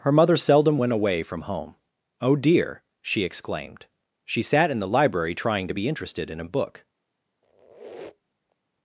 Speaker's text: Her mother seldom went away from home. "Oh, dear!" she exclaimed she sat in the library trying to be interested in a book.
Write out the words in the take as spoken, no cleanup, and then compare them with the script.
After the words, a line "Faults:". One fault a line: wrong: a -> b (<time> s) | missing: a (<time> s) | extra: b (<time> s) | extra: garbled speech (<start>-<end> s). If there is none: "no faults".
Her mother seldom went away from home. "Oh, dear!" she exclaimed she sat in the library trying to be interested in a book.
Faults:
no faults